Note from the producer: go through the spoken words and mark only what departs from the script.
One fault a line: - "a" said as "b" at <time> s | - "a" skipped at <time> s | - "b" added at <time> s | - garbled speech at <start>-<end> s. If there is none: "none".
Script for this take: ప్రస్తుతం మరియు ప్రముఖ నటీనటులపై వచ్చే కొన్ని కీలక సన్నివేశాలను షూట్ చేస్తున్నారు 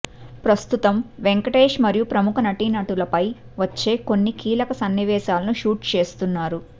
- "వెంకటేష్" added at 1.2 s